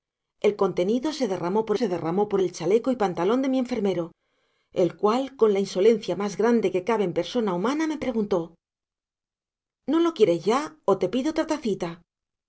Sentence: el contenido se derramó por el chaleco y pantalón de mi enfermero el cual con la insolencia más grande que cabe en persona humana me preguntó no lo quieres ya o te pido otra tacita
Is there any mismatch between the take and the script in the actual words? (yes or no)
yes